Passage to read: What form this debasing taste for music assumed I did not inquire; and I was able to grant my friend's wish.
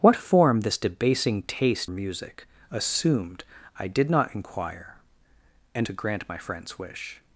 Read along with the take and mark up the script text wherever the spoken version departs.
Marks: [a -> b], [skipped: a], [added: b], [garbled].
What form this debasing taste [skipped: for] music assumed I did not inquire; and [skipped: I was able] to grant my friend's wish.